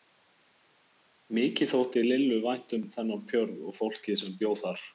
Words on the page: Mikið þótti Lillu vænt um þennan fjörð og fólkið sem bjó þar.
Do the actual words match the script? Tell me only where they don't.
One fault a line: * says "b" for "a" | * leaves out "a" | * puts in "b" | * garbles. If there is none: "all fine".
all fine